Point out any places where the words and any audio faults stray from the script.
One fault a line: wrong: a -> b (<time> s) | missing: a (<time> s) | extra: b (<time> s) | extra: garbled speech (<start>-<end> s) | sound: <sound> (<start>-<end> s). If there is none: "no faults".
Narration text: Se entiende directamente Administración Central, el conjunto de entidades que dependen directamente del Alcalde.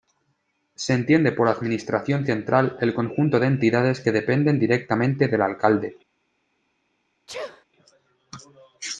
wrong: directamente -> por (1.3 s)
sound: sneeze (7.3-7.7 s)